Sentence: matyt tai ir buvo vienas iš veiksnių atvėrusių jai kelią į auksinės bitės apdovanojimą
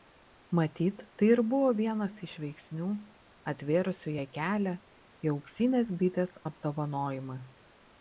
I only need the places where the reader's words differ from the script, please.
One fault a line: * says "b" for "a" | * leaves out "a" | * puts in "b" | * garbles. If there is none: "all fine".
all fine